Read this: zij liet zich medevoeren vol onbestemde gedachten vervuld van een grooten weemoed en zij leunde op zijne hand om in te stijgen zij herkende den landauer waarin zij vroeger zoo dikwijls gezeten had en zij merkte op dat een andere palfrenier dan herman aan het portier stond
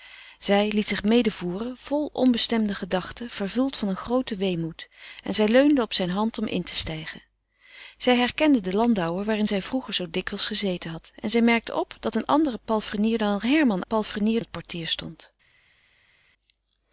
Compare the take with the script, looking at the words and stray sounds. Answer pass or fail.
fail